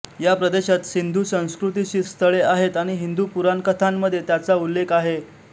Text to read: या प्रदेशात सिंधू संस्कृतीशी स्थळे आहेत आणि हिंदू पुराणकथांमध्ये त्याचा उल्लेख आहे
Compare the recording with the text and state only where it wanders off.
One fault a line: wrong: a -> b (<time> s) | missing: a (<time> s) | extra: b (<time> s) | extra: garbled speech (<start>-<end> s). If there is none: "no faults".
no faults